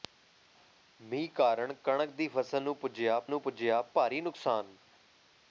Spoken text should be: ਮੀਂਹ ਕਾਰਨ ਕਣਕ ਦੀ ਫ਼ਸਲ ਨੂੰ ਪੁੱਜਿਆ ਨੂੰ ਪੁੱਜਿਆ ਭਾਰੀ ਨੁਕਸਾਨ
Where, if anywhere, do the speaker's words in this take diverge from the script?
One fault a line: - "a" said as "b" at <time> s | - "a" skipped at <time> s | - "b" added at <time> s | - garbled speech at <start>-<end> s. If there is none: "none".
none